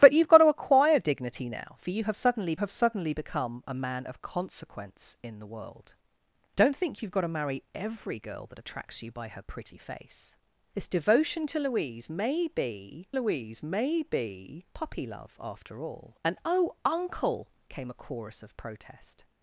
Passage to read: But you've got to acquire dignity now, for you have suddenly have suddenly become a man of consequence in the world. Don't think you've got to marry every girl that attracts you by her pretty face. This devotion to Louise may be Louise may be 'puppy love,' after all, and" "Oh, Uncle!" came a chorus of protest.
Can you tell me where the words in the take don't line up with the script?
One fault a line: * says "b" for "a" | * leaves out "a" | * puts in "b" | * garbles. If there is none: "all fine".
all fine